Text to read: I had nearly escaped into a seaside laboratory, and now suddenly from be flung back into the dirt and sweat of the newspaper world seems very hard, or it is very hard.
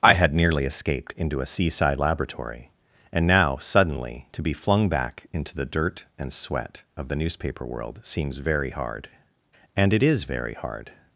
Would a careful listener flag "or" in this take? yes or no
yes